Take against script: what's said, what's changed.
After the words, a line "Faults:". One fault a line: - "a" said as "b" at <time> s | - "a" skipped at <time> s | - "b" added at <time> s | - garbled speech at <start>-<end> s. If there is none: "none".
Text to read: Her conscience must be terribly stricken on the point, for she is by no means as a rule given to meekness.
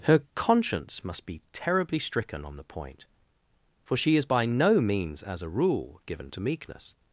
Her conscience must be terribly stricken on the point, for she is by no means as a rule given to meekness.
Faults:
none